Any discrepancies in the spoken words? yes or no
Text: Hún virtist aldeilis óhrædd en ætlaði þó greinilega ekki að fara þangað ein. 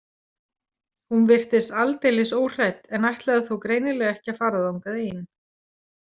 no